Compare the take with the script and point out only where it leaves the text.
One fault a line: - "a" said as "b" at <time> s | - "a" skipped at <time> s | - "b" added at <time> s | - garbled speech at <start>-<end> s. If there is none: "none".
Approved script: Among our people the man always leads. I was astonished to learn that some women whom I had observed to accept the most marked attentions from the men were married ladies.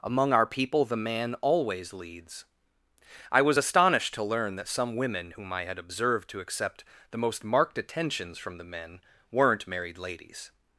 - "were" said as "weren't" at 9.3 s